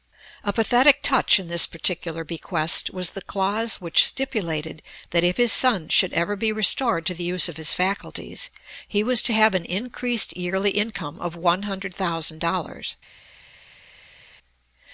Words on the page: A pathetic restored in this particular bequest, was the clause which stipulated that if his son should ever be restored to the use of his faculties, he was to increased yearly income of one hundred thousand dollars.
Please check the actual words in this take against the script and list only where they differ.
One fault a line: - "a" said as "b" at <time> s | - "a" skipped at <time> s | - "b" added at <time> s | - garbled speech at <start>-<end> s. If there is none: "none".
- "restored" said as "touch" at 1.0 s
- "have an" added at 9.3 s